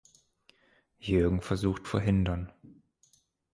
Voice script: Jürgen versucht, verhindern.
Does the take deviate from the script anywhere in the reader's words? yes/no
no